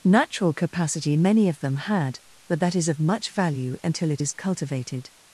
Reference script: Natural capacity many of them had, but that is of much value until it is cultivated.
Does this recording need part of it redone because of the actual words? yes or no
no